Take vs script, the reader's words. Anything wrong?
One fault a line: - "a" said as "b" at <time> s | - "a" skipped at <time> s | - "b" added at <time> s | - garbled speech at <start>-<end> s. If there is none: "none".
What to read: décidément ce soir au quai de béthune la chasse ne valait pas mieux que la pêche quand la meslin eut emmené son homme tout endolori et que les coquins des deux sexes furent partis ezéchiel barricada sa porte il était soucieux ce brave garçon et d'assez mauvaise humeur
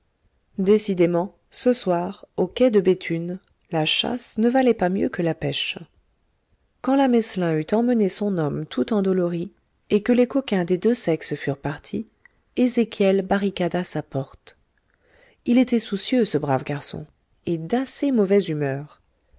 none